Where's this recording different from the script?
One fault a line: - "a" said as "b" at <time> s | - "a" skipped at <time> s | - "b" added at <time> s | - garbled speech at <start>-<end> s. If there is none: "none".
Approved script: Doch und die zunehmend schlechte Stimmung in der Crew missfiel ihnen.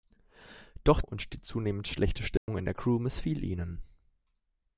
none